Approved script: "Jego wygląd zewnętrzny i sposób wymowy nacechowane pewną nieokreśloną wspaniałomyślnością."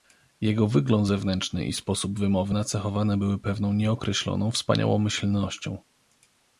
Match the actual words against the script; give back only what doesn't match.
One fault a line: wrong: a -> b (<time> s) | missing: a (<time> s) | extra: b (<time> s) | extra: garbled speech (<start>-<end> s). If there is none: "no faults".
extra: były (3.2 s)